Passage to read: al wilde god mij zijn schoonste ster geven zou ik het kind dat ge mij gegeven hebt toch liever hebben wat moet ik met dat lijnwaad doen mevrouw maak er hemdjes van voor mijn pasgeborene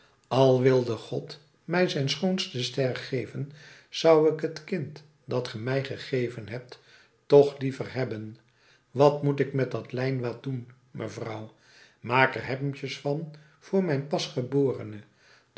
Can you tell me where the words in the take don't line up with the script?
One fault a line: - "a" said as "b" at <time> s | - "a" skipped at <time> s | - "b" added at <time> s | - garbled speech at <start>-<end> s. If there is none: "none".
none